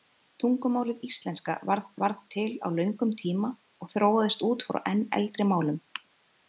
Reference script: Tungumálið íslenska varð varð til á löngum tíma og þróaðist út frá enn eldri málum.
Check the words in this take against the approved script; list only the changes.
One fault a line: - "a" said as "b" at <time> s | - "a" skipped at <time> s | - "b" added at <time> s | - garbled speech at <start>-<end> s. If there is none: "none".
none